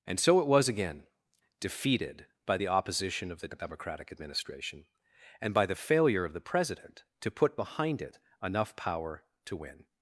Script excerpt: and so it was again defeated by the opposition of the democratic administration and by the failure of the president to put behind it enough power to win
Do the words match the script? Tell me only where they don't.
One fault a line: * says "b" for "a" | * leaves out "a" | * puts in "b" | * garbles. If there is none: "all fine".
all fine